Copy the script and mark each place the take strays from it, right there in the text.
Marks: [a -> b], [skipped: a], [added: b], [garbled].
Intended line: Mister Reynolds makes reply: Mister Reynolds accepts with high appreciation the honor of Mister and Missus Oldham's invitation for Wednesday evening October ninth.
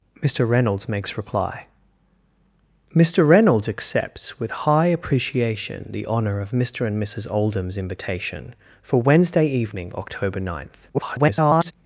Mister Reynolds makes reply: Mister Reynolds accepts with high appreciation the honor of Mister and Missus Oldham's invitation for Wednesday evening October ninth. [garbled]